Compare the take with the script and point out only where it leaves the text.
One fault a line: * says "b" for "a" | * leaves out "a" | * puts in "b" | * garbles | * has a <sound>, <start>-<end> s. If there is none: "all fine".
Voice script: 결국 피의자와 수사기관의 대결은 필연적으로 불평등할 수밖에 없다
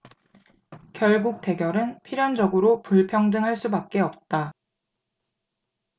* leaves out "피의자와 수사기관의"